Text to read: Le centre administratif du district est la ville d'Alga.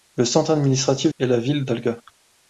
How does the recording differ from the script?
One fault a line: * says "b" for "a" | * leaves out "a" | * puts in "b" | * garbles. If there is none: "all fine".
* leaves out "du district"